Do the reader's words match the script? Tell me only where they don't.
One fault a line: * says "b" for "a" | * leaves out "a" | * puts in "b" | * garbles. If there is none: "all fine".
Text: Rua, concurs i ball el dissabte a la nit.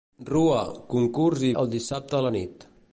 * leaves out "ball"